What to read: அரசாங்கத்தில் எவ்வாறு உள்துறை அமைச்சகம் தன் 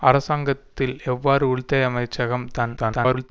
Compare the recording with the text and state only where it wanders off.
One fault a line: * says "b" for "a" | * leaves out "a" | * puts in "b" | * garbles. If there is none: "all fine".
* garbles